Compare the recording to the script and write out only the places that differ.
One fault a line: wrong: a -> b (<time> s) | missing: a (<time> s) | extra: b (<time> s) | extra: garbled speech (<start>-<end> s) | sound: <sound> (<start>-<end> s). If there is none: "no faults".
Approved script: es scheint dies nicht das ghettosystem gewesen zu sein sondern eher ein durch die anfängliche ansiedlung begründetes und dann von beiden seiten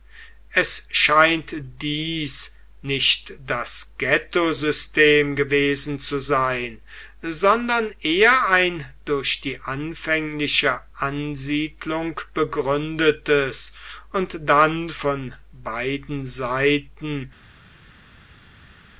no faults